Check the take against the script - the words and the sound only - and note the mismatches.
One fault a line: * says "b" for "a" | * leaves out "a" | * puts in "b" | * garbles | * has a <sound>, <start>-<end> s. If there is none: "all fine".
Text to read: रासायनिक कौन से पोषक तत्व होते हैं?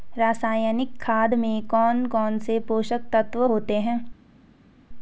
* puts in "खाद में कौन"